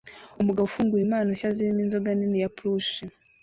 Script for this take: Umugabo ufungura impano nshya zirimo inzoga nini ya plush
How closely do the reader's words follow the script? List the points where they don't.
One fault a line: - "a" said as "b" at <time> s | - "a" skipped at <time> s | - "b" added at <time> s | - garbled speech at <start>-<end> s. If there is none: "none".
none